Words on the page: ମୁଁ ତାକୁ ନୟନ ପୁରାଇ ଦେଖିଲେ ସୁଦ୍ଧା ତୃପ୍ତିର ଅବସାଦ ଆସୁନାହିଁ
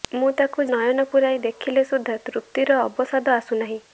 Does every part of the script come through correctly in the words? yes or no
yes